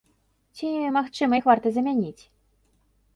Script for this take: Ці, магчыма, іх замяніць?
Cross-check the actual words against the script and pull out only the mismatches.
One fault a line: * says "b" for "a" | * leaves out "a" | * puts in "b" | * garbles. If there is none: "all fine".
* puts in "варта"